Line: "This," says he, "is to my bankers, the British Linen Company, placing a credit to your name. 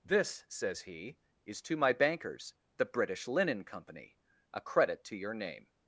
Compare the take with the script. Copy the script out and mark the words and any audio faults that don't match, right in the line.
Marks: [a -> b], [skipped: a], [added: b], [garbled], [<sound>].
"This," says he, "is to my bankers, the British Linen Company, [skipped: placing] a credit to your name.